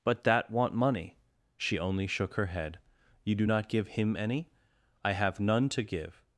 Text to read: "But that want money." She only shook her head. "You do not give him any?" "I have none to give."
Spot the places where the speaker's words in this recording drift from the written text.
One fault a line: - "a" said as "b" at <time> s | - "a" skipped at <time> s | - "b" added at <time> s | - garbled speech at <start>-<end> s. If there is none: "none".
none